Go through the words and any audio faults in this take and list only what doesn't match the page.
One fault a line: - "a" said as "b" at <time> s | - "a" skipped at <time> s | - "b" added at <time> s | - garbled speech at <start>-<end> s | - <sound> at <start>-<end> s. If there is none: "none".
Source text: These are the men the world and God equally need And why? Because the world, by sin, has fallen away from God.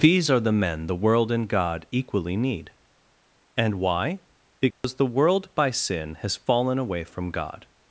- dropout at 4.7-4.8 s